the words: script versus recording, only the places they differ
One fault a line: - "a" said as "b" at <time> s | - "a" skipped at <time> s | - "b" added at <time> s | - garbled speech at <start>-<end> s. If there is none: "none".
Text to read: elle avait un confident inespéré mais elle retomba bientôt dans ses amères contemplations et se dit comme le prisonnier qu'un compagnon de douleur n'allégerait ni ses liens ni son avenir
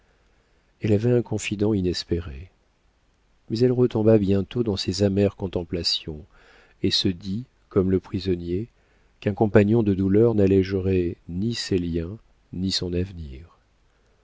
none